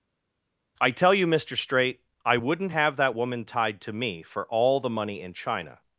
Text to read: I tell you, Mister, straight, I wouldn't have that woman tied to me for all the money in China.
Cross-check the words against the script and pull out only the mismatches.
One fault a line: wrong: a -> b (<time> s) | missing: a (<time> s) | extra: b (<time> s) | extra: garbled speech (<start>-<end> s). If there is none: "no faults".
no faults